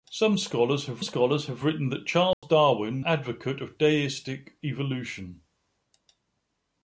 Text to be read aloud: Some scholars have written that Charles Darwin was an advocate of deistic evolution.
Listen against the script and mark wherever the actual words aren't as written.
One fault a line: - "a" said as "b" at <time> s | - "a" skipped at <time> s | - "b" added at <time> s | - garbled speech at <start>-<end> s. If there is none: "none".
- "scholars have" added at 1.0 s
- "was an" skipped at 3.0 s